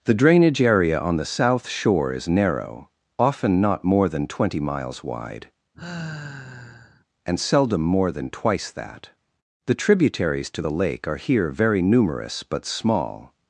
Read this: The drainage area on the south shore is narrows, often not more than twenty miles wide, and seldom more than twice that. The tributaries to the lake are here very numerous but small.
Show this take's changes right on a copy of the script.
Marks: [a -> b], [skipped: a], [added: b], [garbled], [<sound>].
The drainage area on the south shore is [narrows, -> narrow] often not more than twenty miles wide, [sigh] and seldom more than twice that. The tributaries to the lake are here very numerous but small.